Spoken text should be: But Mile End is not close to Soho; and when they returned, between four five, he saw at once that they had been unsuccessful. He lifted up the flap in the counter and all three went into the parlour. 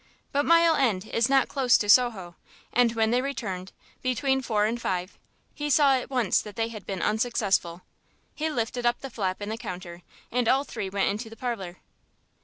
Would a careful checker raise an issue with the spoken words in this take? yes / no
yes